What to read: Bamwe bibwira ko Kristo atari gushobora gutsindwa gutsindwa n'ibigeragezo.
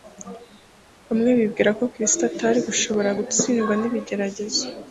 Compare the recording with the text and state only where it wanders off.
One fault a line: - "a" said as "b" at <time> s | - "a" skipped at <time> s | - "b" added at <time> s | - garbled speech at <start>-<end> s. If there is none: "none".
- "gutsindwa" skipped at 3.7 s